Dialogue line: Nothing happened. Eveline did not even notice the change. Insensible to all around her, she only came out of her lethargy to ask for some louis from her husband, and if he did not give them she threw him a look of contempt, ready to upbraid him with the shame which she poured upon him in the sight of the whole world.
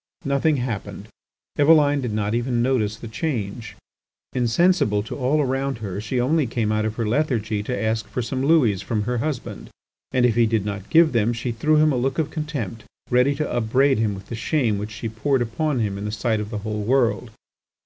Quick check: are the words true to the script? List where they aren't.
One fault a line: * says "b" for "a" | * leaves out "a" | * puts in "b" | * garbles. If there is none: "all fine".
all fine